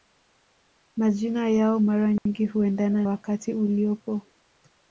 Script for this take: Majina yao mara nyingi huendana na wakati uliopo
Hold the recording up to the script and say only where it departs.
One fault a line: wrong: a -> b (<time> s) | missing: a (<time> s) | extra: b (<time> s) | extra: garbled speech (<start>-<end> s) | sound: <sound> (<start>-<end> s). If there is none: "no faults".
sound: dropout (2.2-2.3 s)
missing: na (3.0 s)